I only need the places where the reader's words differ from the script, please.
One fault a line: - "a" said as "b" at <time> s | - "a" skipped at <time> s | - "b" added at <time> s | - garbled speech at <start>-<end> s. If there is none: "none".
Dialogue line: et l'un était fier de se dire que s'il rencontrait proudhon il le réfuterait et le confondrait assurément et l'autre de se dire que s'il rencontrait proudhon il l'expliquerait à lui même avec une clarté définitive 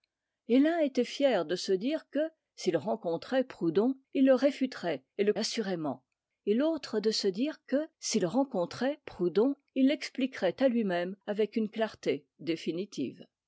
- "confondrait" skipped at 5.3 s